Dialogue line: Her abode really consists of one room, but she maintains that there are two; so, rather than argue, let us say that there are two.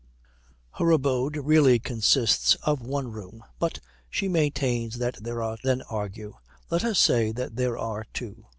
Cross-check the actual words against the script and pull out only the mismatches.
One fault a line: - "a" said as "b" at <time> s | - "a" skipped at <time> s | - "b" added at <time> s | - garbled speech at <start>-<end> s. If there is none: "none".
- "two so rather" skipped at 5.6 s